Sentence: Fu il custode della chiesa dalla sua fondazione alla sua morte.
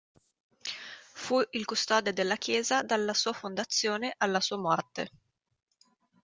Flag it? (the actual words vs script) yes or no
no